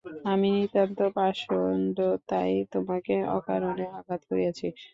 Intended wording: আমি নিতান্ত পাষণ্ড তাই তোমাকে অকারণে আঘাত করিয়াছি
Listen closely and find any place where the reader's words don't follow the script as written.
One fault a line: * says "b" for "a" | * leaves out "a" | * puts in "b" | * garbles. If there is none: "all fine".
all fine